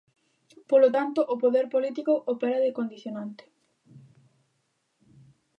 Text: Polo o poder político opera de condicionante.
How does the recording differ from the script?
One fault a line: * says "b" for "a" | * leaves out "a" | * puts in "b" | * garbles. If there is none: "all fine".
* puts in "tanto"